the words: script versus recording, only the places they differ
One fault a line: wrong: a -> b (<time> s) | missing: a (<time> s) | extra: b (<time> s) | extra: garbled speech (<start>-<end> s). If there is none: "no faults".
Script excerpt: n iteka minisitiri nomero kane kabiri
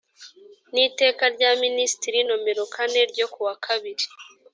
extra: rya (1.4 s)
extra: ryo kuwa (3.1 s)